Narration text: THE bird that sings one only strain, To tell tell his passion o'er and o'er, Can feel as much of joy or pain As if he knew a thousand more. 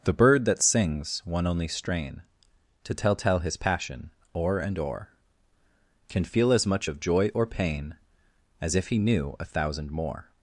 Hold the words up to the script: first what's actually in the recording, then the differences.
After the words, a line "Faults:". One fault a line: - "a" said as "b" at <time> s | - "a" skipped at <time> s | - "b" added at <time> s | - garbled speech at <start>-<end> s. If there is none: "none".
THE bird that sings one only strain, To tell tell his passion o'er and o'er, Can feel as much of joy or pain As if he knew a thousand more.
Faults:
none